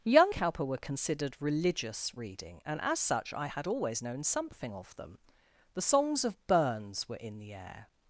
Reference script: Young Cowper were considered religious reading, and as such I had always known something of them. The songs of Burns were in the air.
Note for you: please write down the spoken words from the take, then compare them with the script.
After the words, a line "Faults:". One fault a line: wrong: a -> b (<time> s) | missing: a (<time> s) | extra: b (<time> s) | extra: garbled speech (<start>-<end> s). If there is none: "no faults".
Young Cowper were considered religious reading, and as such I had always known something of them. The songs of Burns were in the air.
Faults:
no faults